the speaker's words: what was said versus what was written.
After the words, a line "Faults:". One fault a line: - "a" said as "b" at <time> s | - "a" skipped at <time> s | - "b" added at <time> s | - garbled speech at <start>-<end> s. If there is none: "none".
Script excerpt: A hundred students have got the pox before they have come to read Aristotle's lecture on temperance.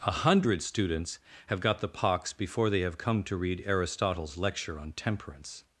A hundred students have got the pox before they have come to read Aristotle's lecture on temperance.
Faults:
none